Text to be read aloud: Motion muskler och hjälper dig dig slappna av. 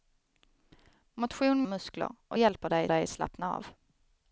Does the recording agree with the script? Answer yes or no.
yes